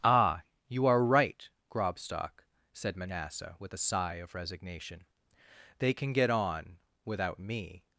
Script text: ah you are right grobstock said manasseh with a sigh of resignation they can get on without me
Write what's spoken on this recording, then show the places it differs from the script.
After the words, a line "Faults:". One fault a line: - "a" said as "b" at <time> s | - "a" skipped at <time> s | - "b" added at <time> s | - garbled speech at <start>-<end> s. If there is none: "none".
ah you are right grobstock said manasseh with a sigh of resignation they can get on without me
Faults:
none